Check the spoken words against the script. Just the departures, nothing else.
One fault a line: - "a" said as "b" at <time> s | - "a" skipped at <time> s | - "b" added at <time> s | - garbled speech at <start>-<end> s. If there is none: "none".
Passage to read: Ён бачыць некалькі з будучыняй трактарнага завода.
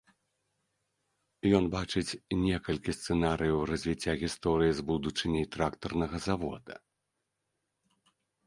- "сцэнарыяў развіцця гісторыі" added at 3.0 s